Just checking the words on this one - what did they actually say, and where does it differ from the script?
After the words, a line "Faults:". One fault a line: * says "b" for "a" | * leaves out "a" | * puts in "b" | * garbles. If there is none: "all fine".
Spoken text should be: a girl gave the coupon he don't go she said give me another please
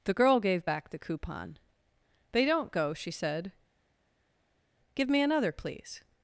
the girl gave back the coupon they don't go she said give me another please
Faults:
* says "the" for "a"
* puts in "back"
* says "they" for "he"